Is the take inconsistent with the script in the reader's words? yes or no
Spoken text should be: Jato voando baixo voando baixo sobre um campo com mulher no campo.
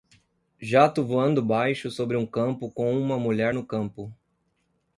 yes